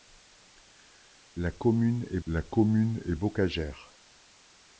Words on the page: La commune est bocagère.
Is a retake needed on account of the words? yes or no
yes